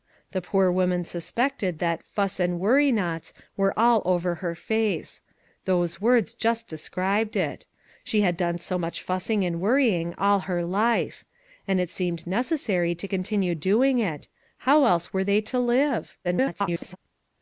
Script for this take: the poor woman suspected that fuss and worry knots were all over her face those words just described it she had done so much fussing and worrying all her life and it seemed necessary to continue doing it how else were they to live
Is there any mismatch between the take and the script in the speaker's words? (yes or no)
yes